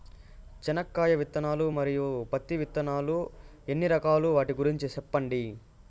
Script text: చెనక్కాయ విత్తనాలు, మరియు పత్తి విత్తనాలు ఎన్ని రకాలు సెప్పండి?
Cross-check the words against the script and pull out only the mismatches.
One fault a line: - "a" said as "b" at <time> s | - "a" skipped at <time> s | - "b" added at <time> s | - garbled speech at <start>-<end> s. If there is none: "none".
- "వాటి గురించి" added at 4.4 s